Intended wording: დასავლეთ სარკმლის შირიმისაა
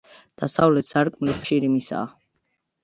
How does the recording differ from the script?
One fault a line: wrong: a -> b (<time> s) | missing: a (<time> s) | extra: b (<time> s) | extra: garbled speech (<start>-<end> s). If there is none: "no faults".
no faults